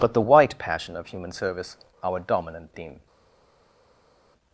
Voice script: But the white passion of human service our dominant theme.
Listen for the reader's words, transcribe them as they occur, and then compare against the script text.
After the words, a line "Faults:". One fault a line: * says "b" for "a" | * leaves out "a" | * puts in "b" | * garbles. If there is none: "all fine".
But the white passion of human service our dominant theme.
Faults:
all fine